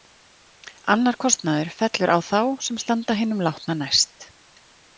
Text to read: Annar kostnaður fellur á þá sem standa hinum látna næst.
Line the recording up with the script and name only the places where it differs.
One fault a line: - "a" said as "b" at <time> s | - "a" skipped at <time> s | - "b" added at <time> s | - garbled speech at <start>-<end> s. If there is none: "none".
none